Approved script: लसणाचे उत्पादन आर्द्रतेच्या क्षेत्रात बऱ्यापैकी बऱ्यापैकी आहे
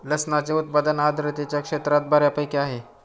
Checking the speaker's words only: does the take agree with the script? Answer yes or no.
no